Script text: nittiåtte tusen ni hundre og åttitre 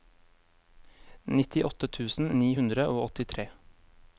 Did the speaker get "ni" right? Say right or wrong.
right